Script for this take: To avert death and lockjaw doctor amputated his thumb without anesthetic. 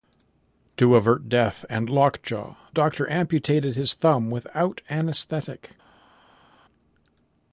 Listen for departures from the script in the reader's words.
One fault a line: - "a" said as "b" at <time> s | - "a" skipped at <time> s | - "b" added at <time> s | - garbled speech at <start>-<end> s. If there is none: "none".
none